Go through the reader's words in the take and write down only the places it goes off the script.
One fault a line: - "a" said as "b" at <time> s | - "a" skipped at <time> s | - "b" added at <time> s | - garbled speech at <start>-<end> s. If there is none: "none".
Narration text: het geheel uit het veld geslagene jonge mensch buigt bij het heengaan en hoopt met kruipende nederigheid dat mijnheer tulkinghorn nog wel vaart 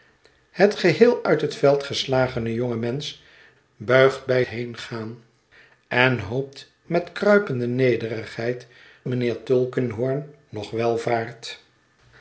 - "het" skipped at 4.4 s
- "dat" skipped at 8.7 s